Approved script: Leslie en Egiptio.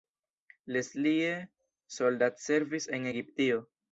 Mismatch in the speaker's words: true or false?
true